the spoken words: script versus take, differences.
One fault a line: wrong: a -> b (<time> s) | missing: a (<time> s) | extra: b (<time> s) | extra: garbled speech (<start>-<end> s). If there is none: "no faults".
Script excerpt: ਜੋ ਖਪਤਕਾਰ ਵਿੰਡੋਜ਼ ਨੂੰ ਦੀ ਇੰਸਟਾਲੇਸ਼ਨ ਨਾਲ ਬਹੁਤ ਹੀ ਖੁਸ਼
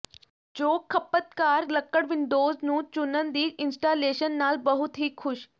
extra: ਲੱਕੜ (1.7 s)
extra: ਚੁਣਨ (2.9 s)